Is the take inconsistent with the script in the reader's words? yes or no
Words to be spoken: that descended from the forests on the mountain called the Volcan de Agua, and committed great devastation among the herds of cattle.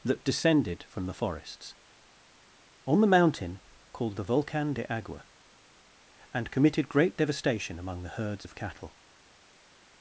no